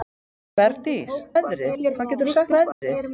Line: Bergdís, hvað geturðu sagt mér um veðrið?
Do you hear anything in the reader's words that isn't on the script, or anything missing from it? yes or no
yes